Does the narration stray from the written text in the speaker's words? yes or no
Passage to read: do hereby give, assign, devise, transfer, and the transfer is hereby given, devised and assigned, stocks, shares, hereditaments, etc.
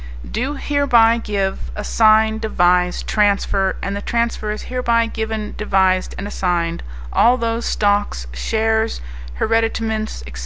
yes